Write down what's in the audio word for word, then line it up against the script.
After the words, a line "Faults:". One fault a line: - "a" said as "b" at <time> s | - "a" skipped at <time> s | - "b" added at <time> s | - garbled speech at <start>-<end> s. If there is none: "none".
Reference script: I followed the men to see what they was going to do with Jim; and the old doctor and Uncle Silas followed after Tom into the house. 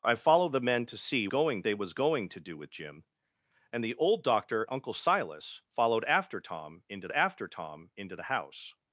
I followed the men to see going they was going to do with Jim; and the old doctor Uncle Silas followed after Tom into after Tom into the house.
Faults:
- "what" said as "going" at 1.3 s
- "and" skipped at 4.6 s
- "after Tom into" added at 7.1 s